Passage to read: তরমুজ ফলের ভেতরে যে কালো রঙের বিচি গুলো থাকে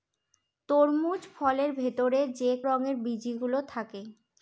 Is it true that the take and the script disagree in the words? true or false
true